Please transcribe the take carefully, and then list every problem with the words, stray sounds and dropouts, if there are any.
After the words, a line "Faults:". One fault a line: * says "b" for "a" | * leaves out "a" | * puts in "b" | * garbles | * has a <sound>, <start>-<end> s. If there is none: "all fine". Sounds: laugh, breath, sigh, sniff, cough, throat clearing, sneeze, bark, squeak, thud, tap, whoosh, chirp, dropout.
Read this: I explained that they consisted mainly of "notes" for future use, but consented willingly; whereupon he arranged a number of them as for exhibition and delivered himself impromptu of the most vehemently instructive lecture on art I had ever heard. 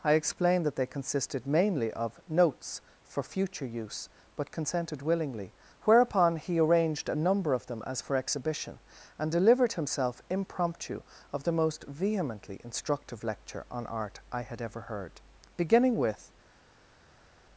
I explained that they consisted mainly of "notes" for future use, but consented willingly; whereupon he arranged a number of them as for exhibition and delivered himself impromptu of the most vehemently instructive lecture on art I had ever heard. Beginning with
Faults:
* puts in "Beginning with"